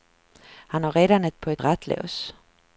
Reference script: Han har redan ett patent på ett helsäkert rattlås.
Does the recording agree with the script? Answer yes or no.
no